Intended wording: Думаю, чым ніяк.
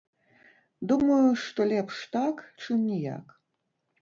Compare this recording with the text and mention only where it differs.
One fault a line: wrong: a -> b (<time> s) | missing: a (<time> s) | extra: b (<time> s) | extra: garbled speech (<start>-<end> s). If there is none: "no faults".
extra: што лепш так (1.4 s)